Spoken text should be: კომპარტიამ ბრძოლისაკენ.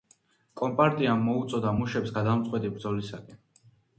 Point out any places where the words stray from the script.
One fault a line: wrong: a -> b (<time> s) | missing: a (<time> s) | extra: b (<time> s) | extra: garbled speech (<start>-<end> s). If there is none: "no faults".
extra: მოუწოდა მუშებს გადამწყვეტი (1.3 s)